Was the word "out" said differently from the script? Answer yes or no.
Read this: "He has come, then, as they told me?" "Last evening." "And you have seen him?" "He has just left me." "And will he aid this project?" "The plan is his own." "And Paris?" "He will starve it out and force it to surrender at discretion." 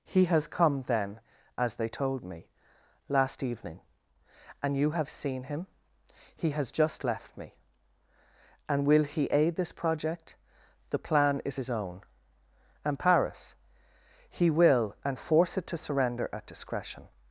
yes